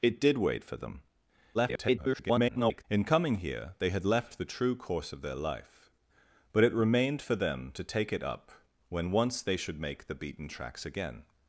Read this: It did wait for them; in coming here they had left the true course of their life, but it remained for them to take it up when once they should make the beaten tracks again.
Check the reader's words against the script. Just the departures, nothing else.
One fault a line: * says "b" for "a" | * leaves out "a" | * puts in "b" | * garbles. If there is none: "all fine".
* garbles